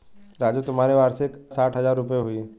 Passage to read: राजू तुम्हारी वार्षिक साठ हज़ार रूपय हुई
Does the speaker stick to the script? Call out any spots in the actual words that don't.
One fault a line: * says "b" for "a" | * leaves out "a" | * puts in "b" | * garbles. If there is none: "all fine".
all fine